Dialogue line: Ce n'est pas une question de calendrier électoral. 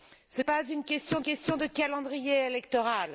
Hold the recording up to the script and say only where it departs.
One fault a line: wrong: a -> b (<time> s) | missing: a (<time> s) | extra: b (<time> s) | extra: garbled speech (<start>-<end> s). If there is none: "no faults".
missing: n'est (0.4 s)
extra: question (1.2 s)